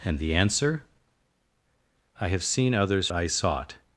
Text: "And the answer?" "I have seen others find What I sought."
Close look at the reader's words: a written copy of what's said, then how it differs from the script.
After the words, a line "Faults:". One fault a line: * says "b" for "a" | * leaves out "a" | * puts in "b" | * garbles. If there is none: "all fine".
"And the answer?" "I have seen others I sought."
Faults:
* leaves out "find What"